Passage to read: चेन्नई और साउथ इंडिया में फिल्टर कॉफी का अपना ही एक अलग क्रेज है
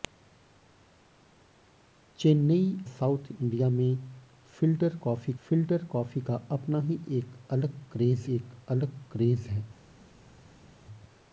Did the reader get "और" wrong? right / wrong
wrong